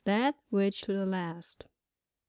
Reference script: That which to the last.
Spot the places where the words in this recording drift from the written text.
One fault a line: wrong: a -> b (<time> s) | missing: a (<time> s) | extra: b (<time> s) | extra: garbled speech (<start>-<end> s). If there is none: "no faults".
no faults